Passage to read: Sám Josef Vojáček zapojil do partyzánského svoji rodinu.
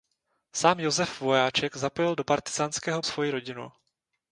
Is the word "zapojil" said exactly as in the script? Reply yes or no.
yes